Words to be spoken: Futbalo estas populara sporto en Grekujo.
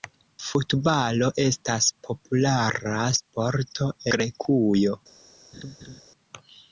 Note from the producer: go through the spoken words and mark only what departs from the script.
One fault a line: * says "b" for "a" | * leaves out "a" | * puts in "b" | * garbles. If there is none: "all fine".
* leaves out "en"